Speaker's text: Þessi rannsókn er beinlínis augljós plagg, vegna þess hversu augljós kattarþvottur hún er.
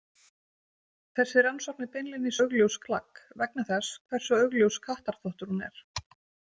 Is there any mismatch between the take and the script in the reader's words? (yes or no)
no